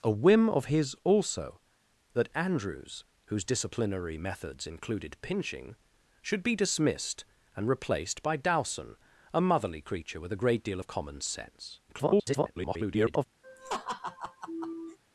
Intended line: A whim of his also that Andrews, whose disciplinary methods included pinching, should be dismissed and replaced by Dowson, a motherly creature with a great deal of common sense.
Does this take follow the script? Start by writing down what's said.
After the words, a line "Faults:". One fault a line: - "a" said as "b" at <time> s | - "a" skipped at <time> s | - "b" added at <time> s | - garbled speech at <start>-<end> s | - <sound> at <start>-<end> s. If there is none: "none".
A whim of his also that Andrews, whose disciplinary methods included pinching, should be dismissed and replaced by Dowson, a motherly creature with a great deal of common sense. [garbled]
Faults:
- garbled speech at 11.9-13.3 s
- laugh at 13.4-15.0 s